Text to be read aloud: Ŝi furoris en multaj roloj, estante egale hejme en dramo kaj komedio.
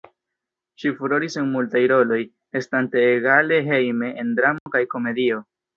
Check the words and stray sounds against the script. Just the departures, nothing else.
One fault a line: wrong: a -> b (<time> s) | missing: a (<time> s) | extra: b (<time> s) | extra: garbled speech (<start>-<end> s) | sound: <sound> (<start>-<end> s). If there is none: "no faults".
sound: dropout (4.6-4.7 s)